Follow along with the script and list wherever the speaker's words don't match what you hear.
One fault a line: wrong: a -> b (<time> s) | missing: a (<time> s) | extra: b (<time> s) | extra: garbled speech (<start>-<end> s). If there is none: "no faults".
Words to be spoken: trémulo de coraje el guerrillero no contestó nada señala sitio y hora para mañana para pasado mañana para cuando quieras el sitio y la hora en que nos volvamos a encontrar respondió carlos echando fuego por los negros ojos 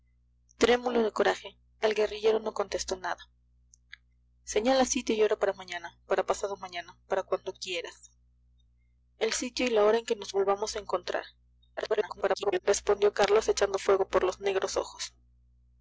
extra: garbled speech (11.8-12.6 s)